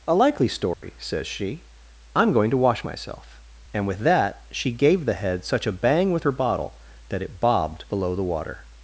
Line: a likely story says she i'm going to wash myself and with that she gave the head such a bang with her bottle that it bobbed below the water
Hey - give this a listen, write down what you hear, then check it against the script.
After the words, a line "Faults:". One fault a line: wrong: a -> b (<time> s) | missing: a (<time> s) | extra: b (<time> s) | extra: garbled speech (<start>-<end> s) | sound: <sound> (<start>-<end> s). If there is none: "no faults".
a likely story says she i'm going to wash myself and with that she gave the head such a bang with her bottle that it bobbed below the water
Faults:
sound: dropout (0.7-0.8 s)